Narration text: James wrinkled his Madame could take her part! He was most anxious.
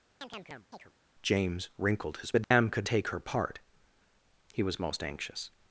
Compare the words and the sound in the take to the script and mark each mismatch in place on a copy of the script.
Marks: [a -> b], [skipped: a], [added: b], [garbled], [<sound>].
[chirp] James wrinkled his Madame [dropout] could take her part! He was most anxious.